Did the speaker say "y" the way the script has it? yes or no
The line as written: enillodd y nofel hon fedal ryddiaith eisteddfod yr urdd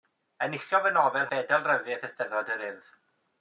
yes